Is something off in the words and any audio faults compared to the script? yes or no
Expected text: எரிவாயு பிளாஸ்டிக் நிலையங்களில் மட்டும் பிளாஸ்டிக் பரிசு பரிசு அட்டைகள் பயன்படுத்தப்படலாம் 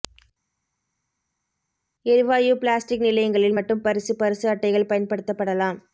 yes